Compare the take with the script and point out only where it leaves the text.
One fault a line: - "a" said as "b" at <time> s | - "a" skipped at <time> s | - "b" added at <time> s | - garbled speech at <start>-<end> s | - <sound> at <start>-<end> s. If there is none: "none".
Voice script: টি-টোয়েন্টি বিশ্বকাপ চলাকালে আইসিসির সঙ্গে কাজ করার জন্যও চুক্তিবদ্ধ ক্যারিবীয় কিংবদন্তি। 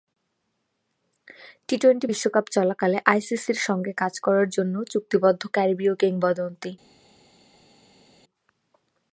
none